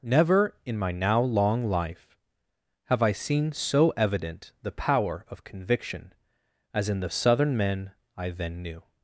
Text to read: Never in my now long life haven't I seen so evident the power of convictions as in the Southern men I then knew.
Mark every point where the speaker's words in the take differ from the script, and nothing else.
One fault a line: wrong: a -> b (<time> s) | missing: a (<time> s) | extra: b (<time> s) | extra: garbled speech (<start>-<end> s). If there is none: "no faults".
wrong: haven't -> have (2.9 s)
wrong: convictions -> conviction (5.4 s)